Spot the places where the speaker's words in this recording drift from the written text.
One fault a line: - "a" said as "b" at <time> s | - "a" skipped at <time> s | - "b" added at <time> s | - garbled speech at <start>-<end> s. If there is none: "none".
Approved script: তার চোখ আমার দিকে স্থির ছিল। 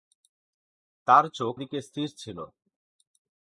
- "আমার" skipped at 1.6 s